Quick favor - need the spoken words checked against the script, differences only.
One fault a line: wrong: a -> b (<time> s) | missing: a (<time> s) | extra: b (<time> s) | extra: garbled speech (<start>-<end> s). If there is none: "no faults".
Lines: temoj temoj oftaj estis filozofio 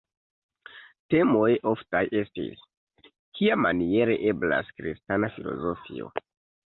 missing: temoj (1.5 s)
extra: kiamaniere eblas kristana (3.4 s)